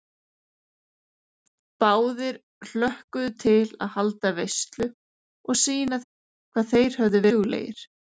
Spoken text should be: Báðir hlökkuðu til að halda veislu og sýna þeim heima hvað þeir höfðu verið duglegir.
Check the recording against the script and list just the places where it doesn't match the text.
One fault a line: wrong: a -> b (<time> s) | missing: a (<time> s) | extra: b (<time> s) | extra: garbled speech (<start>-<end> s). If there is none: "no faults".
missing: þeim heima (6.0 s)
missing: verið (7.2 s)